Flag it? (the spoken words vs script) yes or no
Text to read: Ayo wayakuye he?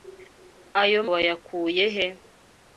no